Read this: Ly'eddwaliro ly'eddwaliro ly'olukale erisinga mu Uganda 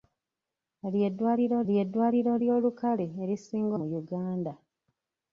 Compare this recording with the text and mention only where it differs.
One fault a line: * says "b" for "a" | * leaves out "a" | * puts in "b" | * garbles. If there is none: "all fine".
all fine